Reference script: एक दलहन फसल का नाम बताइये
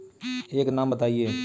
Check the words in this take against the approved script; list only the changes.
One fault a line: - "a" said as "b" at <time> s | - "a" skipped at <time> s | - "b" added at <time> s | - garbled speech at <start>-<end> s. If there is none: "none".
- "दलहन फसल का" skipped at 0.7 s